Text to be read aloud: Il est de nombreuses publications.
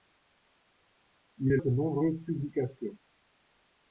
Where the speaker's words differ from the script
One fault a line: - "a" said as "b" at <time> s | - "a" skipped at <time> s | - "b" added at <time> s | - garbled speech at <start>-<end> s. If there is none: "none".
none